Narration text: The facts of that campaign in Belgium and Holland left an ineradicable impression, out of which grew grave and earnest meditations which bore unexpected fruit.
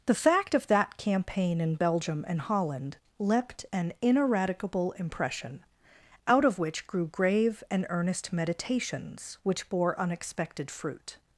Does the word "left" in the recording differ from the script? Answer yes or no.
yes